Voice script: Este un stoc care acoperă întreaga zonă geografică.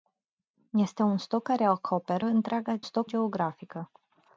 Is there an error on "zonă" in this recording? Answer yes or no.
yes